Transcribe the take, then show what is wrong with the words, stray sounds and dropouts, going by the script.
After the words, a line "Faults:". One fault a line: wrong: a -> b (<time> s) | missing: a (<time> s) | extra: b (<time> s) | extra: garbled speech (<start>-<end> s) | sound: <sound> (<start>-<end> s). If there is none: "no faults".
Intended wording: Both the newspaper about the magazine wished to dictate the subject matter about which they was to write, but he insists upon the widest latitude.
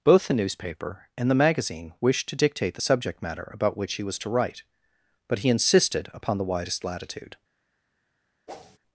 Both the newspaper and the magazine wished to dictate the subject matter about which he was to write, but he insisted upon the widest latitude.
Faults:
wrong: about -> and (1.1 s)
wrong: they -> he (3.9 s)
wrong: insists -> insisted (5.5 s)
sound: whoosh (8.5-8.8 s)